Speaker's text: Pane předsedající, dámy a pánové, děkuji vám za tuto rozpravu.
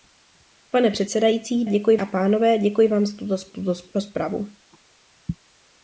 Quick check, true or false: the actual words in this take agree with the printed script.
false